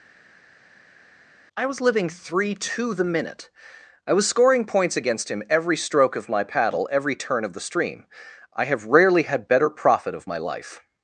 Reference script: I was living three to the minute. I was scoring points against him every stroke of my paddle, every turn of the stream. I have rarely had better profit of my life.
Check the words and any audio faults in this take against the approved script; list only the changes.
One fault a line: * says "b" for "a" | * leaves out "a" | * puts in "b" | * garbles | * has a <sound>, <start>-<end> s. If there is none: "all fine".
all fine